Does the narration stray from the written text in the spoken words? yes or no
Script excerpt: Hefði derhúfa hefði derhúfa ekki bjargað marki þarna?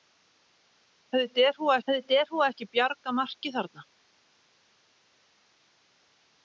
no